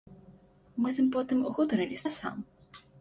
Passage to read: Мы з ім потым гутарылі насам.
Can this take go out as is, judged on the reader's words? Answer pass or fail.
pass